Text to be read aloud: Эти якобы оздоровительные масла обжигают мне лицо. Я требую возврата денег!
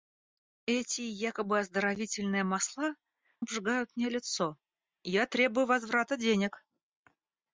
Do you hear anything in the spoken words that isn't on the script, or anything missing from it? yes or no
no